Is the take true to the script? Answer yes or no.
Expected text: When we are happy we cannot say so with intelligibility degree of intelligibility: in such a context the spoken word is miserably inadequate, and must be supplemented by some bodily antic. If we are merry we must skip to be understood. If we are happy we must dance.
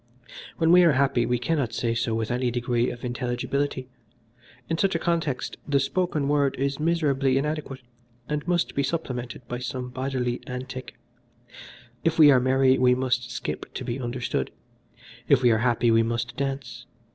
no